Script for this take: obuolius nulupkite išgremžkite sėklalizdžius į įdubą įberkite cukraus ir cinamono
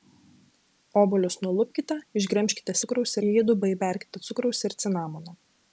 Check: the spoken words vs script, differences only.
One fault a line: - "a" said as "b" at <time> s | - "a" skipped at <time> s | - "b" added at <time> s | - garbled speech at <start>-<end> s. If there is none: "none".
- "sėklalizdžius" said as "cukraus" at 2.8 s